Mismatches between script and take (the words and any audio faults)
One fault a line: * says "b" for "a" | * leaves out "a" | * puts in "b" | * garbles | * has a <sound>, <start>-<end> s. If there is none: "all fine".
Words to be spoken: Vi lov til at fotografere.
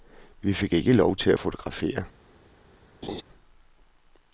* puts in "fik ikke"
* has a laugh, 3.0-3.2 s